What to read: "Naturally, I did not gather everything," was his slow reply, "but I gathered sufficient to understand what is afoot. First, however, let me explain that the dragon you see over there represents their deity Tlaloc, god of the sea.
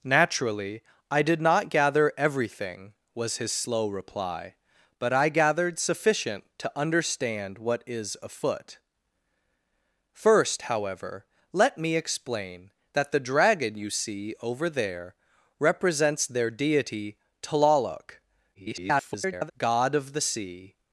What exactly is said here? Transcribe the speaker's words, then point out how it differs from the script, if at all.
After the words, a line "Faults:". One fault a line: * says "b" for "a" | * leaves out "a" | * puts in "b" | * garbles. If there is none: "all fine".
"Naturally, I did not gather everything," was his slow reply, "but I gathered sufficient to understand what is afoot. First, however, let me explain that the dragon you see over there represents their deity Tlaloc, [garbled] god of the sea.
Faults:
* garbles